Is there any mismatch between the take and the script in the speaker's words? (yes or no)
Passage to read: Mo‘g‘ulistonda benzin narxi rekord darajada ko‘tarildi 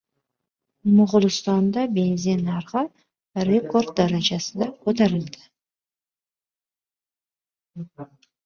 no